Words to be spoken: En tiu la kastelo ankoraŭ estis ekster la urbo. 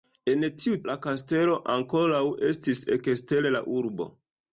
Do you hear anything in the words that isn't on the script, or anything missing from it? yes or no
no